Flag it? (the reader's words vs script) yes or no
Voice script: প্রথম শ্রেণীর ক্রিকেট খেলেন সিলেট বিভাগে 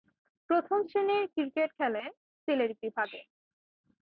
no